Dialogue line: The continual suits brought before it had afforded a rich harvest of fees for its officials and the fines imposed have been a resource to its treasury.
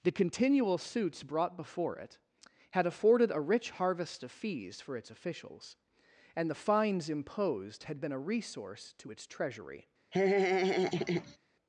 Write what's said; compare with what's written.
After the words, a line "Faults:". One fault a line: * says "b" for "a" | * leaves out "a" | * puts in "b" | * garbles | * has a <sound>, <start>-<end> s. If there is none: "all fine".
The continual suits brought before it had afforded a rich harvest of fees for its officials and the fines imposed had been a resource to its treasury.
Faults:
* says "had" for "have"
* has a laugh, 10.1-11.4 s